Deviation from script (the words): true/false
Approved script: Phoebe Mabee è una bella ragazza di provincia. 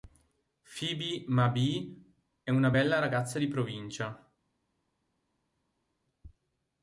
false